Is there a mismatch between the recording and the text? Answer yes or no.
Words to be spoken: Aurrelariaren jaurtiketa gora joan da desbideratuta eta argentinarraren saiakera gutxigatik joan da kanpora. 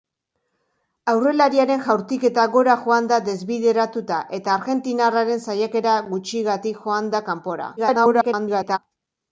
yes